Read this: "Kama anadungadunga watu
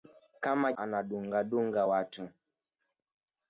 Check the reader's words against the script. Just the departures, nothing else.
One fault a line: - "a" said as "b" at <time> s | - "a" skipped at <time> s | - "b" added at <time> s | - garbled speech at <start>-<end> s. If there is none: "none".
none